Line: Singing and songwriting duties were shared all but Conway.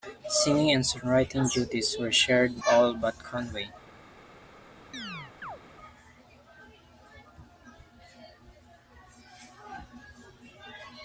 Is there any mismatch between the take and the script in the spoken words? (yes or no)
no